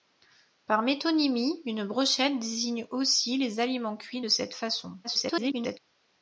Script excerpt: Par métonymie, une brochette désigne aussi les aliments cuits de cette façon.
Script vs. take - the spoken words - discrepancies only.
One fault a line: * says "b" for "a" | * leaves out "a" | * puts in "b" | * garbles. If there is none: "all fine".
* garbles